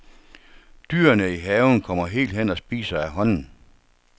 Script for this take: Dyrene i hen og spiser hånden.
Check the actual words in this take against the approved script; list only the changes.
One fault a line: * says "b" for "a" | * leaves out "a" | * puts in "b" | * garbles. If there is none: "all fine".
* puts in "haven kommer helt"
* puts in "af"